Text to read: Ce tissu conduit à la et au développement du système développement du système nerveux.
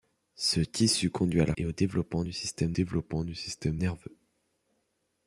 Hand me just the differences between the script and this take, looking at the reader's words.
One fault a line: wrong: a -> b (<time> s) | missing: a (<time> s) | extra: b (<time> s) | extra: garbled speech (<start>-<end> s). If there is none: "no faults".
no faults